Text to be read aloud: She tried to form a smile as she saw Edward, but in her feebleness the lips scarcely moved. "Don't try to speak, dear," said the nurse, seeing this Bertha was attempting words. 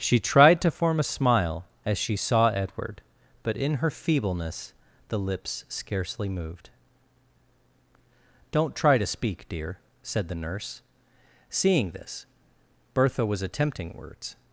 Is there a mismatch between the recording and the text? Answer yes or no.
no